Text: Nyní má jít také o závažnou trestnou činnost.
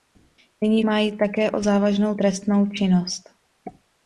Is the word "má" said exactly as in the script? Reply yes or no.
yes